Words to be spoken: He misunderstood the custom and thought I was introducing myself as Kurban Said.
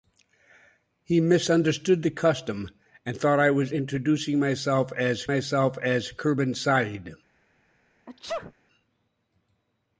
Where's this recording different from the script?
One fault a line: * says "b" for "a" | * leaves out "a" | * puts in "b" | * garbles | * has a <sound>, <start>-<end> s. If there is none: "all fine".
* puts in "myself as"
* has a sneeze, 8.1-8.5 s